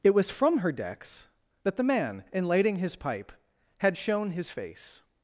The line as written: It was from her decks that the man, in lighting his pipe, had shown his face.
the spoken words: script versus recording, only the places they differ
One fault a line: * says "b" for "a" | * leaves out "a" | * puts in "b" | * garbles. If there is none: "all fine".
all fine